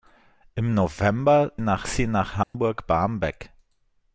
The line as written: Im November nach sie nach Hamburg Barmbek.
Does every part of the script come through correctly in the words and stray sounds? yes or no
no